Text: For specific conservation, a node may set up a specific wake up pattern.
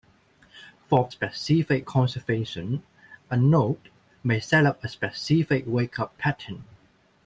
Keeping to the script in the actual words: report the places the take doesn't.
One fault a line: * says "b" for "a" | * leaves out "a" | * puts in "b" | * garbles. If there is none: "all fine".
all fine